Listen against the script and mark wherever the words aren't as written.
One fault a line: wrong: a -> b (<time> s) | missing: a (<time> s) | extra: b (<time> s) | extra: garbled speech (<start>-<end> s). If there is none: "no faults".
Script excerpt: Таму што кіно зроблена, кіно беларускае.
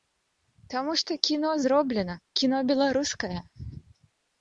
no faults